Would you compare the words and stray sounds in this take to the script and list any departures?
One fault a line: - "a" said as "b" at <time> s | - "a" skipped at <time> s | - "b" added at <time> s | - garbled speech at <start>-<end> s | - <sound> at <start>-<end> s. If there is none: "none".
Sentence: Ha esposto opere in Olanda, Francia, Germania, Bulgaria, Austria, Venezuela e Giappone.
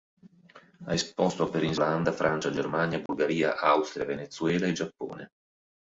- dropout at 3.1-3.1 s